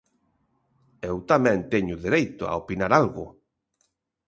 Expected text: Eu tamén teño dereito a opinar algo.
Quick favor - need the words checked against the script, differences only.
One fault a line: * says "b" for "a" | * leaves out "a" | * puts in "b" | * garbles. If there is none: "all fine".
all fine